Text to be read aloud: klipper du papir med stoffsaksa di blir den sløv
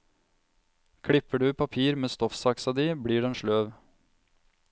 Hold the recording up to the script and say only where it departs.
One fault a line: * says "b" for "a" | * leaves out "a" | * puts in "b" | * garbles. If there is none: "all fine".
all fine